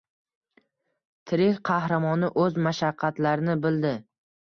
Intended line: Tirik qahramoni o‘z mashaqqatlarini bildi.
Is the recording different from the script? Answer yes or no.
no